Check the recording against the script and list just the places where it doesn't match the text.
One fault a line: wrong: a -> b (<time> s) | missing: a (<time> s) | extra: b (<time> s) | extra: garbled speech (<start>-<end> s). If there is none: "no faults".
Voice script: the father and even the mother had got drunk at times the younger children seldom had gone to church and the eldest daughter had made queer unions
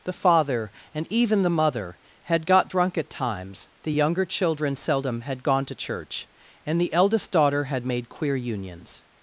no faults